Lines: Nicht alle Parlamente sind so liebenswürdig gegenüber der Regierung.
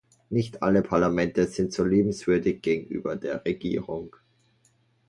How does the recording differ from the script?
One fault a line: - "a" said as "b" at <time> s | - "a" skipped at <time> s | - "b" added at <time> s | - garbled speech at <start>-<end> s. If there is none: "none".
none